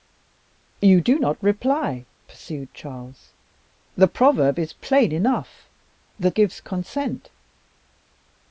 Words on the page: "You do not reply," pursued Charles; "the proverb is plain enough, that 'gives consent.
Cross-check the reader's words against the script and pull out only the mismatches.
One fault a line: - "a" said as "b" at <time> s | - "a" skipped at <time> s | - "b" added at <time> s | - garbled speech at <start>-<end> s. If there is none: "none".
none